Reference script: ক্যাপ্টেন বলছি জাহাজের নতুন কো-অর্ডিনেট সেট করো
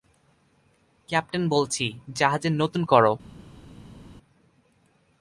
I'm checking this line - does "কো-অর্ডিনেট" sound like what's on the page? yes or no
no